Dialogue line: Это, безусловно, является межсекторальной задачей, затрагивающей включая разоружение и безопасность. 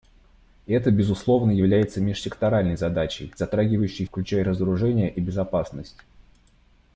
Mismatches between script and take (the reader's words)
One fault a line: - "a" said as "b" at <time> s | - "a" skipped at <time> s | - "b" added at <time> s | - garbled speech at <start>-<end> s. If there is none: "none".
none